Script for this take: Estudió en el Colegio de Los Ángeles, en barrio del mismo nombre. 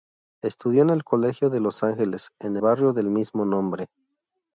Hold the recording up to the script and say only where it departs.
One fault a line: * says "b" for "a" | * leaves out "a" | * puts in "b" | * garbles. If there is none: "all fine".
all fine